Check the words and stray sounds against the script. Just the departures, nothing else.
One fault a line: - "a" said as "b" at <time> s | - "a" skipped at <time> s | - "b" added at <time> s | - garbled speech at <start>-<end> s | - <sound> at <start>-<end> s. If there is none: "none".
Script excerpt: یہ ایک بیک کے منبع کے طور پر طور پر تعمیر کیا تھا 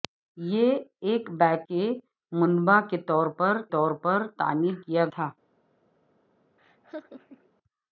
- laugh at 6.6-7.5 s